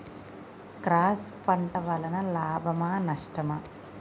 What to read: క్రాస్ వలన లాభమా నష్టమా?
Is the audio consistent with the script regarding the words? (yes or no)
no